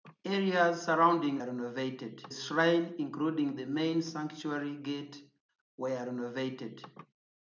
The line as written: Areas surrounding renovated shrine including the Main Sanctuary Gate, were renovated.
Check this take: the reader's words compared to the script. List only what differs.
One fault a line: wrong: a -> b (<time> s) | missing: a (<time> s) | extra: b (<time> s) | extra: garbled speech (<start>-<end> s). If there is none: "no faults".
no faults